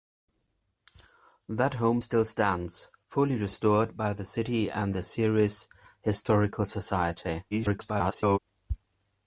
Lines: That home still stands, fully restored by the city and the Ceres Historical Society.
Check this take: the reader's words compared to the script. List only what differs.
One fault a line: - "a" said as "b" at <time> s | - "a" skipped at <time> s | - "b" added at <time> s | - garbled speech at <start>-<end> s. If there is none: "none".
- garbled speech at 7.5-8.4 s